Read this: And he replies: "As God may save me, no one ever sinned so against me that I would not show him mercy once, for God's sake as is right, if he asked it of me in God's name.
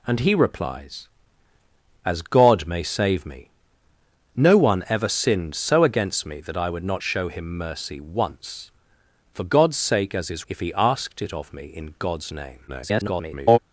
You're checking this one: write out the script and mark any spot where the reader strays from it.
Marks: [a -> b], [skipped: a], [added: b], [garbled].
And he replies: "As God may save me, no one ever sinned so against me that I would not show him mercy once, for God's sake as is [skipped: right,] if he asked it of me in God's name. [garbled]